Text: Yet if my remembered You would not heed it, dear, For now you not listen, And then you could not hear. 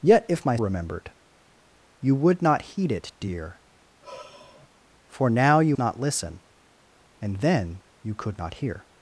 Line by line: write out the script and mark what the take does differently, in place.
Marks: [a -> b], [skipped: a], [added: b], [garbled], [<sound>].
Yet if my remembered You would not heed it, dear, [sigh] For now you not listen, And then you could not hear.